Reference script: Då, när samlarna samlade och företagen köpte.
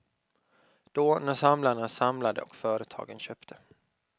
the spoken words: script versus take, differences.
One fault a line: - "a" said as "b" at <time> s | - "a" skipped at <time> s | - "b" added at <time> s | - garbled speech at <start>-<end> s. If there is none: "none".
none